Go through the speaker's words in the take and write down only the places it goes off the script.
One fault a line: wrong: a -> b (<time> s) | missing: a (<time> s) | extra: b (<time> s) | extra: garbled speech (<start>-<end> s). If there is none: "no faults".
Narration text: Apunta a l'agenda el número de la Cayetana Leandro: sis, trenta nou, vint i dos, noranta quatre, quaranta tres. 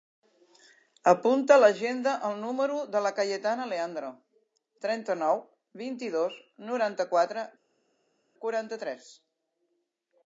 missing: sis (4.1 s)